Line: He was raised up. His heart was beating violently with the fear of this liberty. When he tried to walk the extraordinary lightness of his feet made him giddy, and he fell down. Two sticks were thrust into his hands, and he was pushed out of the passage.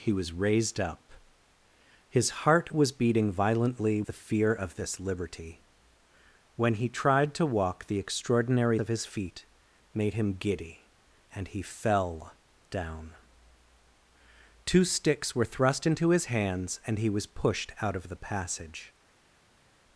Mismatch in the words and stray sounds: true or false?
true